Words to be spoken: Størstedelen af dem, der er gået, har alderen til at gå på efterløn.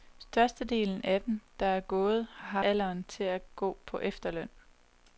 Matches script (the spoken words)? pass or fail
pass